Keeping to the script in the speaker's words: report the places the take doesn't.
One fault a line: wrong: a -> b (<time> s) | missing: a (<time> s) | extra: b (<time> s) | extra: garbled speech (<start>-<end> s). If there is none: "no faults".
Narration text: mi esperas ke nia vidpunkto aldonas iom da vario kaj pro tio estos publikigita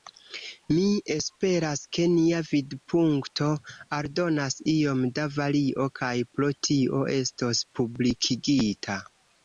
no faults